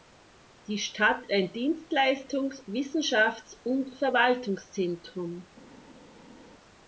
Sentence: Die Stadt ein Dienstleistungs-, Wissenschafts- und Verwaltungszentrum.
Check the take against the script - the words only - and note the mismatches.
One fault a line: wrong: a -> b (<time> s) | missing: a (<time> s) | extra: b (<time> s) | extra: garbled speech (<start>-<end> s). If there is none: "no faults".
no faults